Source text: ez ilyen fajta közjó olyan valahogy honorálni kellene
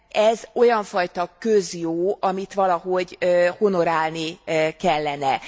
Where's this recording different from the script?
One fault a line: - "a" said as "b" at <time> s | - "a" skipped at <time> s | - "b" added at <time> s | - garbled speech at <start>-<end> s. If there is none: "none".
- "ilyen" said as "olyan" at 0.5 s
- "olyan" said as "amit" at 2.2 s